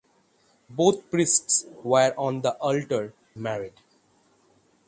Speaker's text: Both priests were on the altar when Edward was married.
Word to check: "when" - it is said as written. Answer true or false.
false